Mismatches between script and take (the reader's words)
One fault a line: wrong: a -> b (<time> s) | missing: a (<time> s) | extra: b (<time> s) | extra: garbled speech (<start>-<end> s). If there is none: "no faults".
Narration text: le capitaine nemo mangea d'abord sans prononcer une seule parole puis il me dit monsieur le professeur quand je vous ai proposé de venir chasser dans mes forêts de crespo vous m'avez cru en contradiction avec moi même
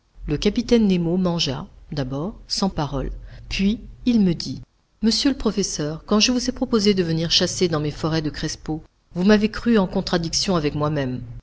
missing: prononcer une seule (2.7 s)